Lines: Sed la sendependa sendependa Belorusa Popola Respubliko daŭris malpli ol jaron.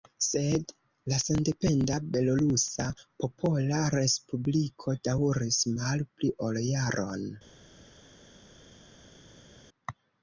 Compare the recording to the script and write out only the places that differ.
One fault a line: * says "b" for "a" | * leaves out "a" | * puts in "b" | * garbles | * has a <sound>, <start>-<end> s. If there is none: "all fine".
* leaves out "sendependa"